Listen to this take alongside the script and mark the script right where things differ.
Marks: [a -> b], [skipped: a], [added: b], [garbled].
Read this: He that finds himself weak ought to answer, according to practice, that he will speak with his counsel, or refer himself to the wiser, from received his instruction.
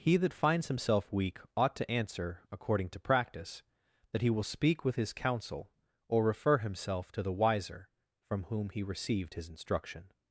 He that finds himself weak ought to answer, according to practice, that he will speak with his counsel, or refer himself to the wiser, from [added: whom he] received his instruction.